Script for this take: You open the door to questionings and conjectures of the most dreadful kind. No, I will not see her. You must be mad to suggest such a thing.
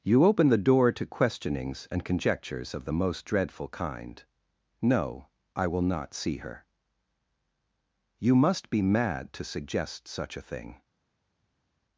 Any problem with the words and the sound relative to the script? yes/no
no